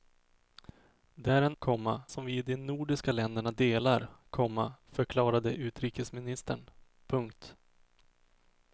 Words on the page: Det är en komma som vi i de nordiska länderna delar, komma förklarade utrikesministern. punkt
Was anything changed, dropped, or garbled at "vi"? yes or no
no